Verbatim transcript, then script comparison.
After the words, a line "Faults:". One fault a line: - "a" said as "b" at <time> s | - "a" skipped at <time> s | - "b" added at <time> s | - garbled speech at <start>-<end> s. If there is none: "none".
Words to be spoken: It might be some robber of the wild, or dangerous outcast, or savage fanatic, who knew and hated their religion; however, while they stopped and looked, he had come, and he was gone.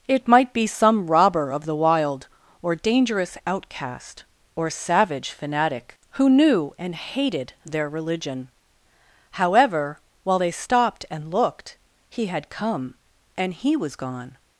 It might be some robber of the wild, or dangerous outcast, or savage fanatic, who knew and hated their religion; however, while they stopped and looked, he had come, and he was gone.
Faults:
none